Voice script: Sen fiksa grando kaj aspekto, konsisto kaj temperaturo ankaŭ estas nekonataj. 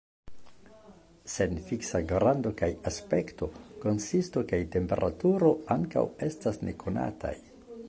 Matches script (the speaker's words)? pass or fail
pass